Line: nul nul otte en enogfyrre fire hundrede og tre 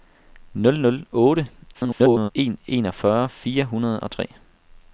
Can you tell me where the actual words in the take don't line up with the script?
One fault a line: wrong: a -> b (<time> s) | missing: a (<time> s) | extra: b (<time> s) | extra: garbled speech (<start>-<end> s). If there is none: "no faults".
extra: garbled speech (1.7-2.3 s)